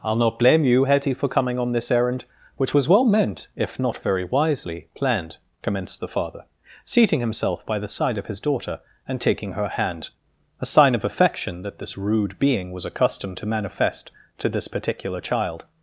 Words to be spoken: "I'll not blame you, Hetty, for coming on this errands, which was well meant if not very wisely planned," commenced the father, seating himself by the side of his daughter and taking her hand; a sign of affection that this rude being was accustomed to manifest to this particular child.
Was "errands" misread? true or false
true